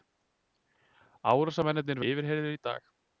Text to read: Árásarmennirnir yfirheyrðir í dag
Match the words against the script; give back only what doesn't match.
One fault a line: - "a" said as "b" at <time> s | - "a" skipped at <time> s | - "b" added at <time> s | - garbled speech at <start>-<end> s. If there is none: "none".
none